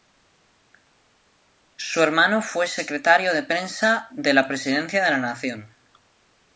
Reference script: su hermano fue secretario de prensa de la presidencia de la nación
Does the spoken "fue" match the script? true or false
true